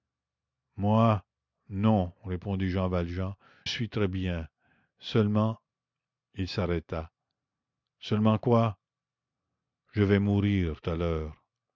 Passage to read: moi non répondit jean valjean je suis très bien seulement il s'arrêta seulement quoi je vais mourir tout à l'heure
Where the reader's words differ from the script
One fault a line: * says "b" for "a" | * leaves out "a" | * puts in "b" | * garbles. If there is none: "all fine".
* leaves out "je"
* leaves out "tout"